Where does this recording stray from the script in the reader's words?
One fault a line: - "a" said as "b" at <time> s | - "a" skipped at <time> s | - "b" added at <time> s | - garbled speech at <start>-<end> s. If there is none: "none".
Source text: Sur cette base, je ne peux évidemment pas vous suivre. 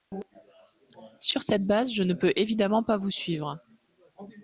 none